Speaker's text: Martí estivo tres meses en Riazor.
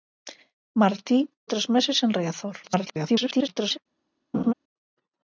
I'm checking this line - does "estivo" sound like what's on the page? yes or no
no